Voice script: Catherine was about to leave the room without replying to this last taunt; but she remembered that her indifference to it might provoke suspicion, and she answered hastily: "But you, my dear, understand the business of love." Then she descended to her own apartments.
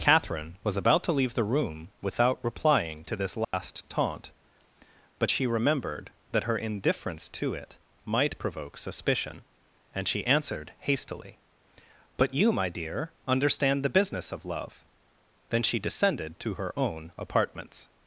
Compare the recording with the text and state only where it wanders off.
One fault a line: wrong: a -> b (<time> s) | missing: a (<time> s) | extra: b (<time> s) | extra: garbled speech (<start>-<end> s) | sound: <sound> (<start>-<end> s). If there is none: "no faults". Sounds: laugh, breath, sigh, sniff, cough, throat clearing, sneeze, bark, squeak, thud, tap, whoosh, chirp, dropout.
sound: dropout (3.4-3.5 s)